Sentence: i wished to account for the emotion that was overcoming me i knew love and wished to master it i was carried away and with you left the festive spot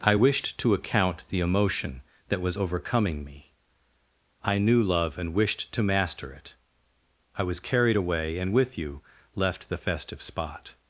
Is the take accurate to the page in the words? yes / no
no